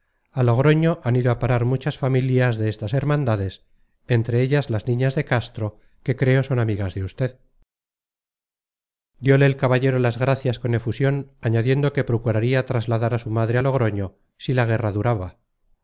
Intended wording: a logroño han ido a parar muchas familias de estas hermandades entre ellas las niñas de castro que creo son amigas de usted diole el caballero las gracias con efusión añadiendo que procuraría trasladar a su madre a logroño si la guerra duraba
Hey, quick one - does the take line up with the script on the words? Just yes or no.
yes